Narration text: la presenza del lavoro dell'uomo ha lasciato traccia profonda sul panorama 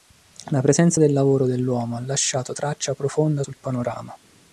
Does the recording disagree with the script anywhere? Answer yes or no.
no